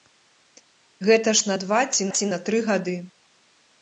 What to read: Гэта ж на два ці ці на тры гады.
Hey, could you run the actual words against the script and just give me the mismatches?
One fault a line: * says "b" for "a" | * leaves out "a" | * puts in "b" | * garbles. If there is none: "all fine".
all fine